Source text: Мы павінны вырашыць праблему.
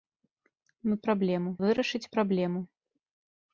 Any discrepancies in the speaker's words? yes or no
yes